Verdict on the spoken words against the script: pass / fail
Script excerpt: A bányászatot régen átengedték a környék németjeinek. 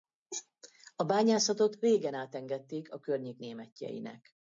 pass